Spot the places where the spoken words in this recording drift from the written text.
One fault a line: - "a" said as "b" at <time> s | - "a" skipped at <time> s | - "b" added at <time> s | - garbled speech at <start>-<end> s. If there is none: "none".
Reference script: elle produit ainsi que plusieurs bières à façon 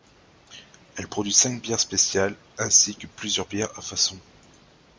- "cinq bières spéciales" added at 1.3 s